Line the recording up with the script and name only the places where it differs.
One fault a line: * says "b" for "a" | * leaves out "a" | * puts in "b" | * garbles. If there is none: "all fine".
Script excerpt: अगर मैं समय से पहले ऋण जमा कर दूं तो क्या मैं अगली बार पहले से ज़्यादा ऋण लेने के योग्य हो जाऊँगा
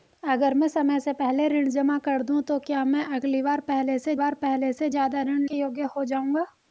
* puts in "बार पहले से"
* leaves out "लेने"